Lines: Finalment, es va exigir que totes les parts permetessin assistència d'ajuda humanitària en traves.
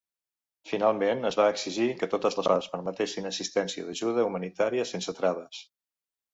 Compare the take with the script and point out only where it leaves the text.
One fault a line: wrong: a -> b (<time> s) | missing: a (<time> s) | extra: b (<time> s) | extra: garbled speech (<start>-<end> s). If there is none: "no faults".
wrong: en -> sense (4.9 s)